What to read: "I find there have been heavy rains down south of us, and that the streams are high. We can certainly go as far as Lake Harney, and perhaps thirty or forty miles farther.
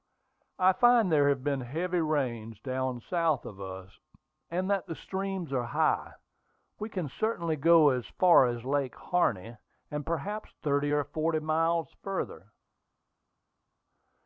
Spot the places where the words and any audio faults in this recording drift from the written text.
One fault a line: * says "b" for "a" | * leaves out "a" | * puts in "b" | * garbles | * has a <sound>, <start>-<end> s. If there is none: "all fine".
all fine